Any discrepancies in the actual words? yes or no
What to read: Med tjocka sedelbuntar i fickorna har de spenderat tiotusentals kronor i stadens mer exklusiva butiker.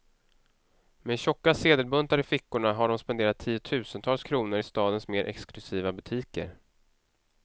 no